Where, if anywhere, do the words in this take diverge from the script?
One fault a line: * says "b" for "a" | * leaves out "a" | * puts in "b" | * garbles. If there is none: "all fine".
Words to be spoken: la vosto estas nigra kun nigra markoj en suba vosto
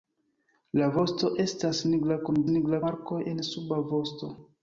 all fine